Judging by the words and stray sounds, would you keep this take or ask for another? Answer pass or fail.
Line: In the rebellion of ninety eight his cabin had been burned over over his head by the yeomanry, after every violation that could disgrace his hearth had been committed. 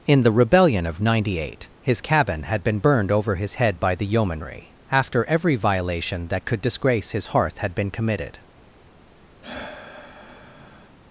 fail